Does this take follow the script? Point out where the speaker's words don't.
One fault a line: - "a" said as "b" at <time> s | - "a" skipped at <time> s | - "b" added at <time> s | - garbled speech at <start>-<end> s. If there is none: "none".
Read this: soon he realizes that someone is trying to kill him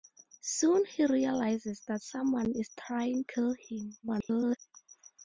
- "to" skipped at 3.2 s
- garbled speech at 4.0-4.6 s